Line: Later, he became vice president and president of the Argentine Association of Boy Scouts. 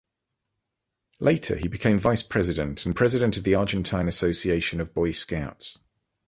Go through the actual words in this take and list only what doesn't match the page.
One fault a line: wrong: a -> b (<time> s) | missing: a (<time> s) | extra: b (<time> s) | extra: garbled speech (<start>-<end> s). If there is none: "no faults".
no faults